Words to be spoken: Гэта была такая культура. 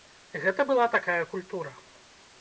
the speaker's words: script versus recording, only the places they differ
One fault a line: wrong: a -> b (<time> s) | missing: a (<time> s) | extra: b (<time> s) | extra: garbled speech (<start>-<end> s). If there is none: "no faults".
no faults